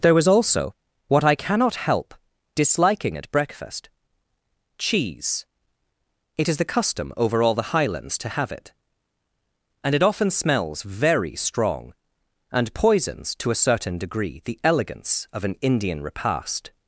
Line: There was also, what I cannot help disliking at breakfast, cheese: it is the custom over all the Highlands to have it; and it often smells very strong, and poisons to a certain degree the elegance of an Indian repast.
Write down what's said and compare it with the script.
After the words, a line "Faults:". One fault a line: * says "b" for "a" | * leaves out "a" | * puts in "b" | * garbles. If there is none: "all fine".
There was also, what I cannot help disliking at breakfast, cheese: it is the custom over all the Highlands to have it; and it often smells very strong, and poisons to a certain degree the elegance of an Indian repast.
Faults:
all fine